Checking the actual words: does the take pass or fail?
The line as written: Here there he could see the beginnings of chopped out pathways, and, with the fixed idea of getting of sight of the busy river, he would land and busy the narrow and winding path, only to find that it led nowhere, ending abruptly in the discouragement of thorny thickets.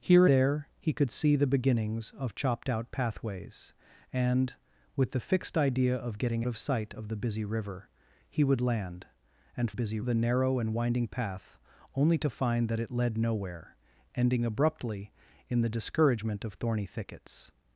pass